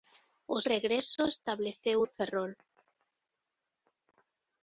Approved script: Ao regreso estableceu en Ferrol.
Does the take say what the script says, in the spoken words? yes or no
yes